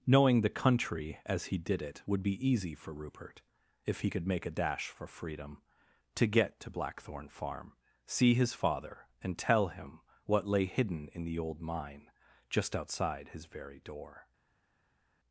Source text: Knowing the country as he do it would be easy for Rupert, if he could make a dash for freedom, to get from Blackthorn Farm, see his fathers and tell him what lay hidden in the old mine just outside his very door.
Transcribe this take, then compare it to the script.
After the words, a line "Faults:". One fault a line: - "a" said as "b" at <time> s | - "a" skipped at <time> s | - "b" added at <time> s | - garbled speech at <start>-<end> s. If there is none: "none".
Knowing the country as he did it would be easy for Rupert, if he could make a dash for freedom, to get to Blackthorn Farm, see his father and tell him what lay hidden in the old mine just outside his very door.
Faults:
- "do" said as "did" at 1.6 s
- "from" said as "to" at 6.6 s
- "fathers" said as "father" at 8.5 s